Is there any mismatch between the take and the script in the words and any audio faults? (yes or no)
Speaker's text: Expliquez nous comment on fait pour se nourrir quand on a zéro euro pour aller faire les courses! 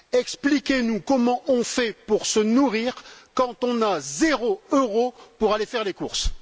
no